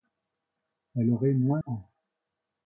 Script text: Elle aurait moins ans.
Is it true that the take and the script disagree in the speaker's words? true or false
false